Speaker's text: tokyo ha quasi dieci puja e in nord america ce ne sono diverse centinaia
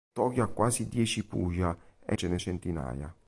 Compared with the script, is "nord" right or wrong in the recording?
wrong